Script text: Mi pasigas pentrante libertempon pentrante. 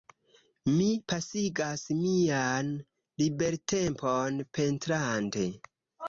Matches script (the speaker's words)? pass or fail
fail